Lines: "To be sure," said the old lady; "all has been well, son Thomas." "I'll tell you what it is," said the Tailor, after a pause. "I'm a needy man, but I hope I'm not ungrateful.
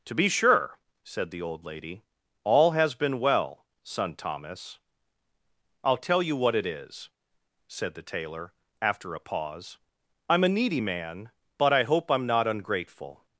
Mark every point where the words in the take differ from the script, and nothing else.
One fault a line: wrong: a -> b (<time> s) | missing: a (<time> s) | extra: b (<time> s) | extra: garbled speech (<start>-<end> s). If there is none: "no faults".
no faults